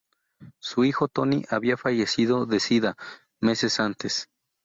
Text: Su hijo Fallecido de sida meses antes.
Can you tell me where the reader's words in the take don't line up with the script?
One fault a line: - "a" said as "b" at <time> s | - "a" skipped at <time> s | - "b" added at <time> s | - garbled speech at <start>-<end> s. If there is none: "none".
- "Tony había" added at 1.1 s